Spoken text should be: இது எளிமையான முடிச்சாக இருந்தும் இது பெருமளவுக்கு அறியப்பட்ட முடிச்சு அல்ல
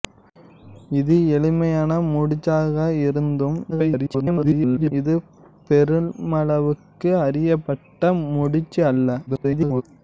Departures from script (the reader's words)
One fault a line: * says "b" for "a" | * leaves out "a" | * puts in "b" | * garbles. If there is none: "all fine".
* garbles
* garbles